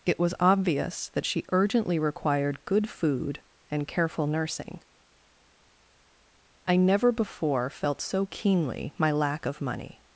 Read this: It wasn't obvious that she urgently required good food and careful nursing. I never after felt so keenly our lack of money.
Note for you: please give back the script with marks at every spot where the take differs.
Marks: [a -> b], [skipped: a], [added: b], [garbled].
It [wasn't -> was] obvious that she urgently required good food and careful nursing. I never [after -> before] felt so keenly [our -> my] lack of money.